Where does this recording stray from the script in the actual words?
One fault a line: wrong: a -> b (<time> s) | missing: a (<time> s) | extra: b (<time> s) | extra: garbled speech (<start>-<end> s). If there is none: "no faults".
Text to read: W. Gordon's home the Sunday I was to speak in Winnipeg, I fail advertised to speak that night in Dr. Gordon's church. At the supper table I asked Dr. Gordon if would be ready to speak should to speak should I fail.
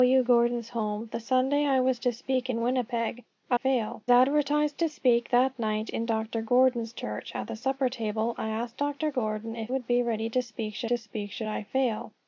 no faults